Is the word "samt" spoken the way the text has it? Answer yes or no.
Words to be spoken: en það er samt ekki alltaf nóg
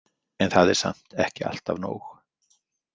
yes